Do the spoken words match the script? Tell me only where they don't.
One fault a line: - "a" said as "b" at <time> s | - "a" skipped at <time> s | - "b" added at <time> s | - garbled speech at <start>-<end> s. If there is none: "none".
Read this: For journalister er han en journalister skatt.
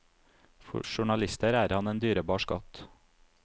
- "journalister" said as "dyrebar" at 2.0 s